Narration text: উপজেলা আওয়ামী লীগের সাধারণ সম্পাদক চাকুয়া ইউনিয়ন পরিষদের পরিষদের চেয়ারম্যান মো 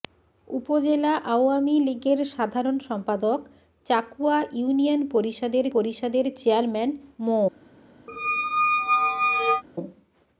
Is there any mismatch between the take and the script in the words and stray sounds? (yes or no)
yes